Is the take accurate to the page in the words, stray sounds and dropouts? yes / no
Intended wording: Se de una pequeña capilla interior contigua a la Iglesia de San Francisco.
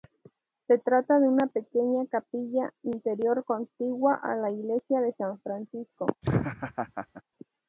no